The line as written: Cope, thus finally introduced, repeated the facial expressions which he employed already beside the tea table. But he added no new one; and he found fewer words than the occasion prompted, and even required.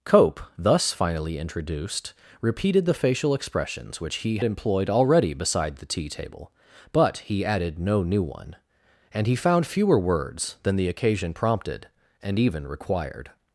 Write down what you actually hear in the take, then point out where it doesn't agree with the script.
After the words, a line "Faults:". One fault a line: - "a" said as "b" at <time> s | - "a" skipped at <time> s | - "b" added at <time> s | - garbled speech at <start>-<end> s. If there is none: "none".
Cope, thus finally introduced, repeated the facial expressions which he employed already beside the tea table. But he added no new one; and he found fewer words than the occasion prompted, and even required.
Faults:
none